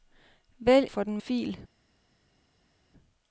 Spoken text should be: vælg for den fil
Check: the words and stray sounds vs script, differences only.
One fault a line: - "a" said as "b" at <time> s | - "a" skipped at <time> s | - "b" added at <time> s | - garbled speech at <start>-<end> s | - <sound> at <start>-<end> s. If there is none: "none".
none